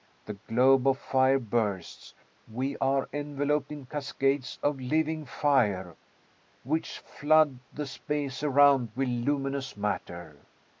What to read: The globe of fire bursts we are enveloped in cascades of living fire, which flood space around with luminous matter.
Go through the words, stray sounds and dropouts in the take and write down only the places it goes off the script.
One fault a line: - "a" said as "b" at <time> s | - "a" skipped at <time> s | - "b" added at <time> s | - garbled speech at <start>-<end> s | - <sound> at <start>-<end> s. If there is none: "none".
- "the" added at 7.7 s